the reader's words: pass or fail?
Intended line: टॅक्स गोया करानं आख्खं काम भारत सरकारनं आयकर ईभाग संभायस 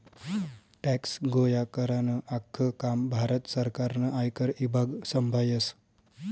pass